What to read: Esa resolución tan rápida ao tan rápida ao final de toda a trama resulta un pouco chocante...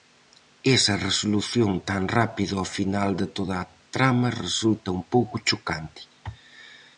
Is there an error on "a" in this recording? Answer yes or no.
no